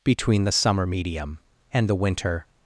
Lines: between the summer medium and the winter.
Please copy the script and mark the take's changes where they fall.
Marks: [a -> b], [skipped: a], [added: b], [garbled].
between the summer medium and the winter.